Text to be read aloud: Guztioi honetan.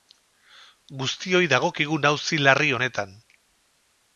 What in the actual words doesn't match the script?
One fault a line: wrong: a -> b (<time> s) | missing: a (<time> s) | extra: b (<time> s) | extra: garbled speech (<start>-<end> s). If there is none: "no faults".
extra: dagokigun auzi larri (1.5 s)